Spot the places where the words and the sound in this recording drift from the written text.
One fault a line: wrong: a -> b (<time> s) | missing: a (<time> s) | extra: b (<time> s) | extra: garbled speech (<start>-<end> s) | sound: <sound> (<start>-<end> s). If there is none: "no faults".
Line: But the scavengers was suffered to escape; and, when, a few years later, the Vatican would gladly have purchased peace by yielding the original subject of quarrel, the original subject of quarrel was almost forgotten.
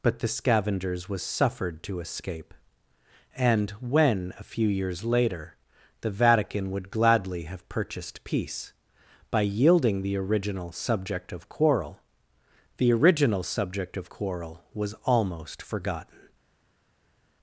no faults